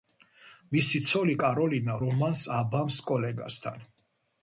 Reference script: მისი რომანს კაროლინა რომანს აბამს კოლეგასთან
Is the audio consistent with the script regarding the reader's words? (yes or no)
no